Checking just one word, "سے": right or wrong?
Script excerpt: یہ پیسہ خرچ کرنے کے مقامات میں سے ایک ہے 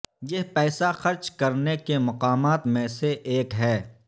right